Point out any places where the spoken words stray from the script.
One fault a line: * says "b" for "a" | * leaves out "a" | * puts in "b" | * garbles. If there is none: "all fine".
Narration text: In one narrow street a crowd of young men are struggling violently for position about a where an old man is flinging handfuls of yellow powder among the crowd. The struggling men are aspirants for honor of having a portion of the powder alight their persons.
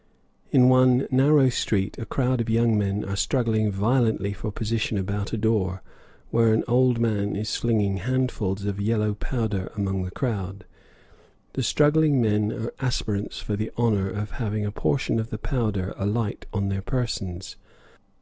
* puts in "door"
* puts in "the"
* puts in "on"